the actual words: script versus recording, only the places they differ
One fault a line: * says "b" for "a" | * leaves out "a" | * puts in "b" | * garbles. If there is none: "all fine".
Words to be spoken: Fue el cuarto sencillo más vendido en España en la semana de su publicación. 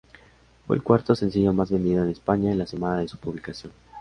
all fine